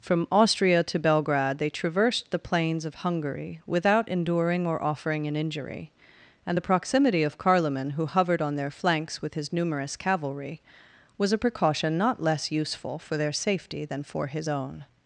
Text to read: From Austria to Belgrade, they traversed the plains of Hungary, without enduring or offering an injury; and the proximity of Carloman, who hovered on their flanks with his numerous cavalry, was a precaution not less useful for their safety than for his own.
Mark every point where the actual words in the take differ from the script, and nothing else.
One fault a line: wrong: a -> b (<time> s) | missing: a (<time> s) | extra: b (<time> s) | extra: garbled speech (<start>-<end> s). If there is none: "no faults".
no faults